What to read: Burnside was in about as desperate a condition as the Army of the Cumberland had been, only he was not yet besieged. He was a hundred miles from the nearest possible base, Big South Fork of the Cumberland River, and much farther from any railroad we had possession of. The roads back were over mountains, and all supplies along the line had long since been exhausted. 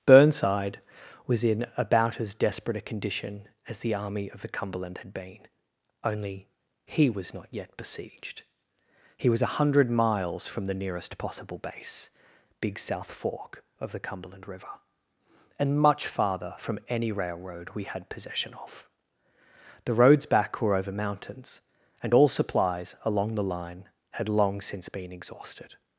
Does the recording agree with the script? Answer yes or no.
yes